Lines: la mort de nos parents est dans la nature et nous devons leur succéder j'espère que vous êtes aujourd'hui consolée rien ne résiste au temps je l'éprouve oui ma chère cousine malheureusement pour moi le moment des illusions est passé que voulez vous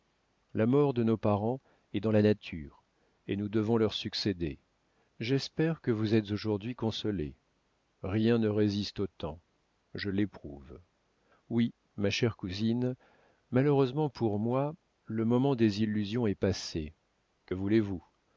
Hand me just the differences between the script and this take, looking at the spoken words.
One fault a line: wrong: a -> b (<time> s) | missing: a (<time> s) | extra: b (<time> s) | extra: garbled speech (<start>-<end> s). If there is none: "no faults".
no faults